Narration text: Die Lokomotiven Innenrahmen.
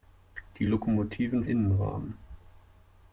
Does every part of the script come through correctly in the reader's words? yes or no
yes